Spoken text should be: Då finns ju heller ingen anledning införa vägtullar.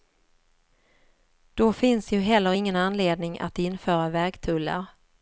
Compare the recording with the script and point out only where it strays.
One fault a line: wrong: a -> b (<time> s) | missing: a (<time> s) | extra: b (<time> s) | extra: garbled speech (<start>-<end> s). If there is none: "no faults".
extra: att (3.4 s)